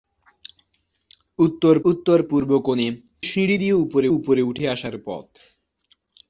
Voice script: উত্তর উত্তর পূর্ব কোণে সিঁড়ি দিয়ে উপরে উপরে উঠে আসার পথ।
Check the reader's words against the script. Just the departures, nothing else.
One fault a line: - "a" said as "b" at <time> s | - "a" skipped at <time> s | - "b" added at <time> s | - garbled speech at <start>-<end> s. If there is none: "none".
none